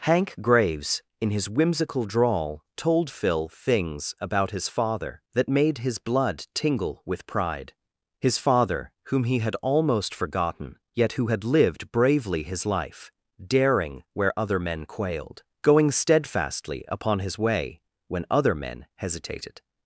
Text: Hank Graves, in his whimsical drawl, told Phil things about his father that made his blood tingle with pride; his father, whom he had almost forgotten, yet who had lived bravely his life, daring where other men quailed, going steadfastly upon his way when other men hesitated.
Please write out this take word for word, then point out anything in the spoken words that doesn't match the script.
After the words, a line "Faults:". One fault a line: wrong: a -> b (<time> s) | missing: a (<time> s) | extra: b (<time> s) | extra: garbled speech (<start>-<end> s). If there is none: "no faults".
Hank Graves, in his whimsical drawl, told Phil things about his father that made his blood tingle with pride; his father, whom he had almost forgotten, yet who had lived bravely his life, daring where other men quailed, going steadfastly upon his way when other men hesitated.
Faults:
no faults